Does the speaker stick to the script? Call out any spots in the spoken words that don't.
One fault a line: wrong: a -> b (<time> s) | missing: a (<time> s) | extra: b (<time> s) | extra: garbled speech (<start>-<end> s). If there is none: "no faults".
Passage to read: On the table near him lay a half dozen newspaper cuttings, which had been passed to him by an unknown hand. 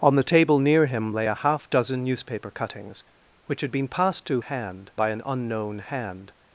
wrong: him -> hand (4.4 s)